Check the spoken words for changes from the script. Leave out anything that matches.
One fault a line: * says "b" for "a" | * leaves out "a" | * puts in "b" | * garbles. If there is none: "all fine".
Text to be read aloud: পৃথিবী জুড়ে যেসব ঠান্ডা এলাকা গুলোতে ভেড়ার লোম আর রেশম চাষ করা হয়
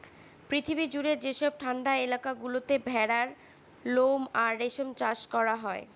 all fine